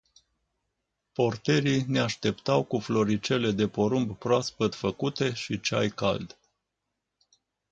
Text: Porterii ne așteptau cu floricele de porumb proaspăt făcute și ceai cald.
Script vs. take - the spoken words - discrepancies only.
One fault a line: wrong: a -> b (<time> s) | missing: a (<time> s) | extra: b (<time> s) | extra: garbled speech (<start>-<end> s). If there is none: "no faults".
no faults